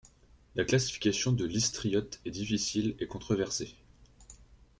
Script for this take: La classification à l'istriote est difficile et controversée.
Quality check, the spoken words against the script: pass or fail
fail